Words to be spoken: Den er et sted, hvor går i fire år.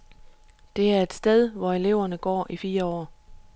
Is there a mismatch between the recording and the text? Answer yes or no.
yes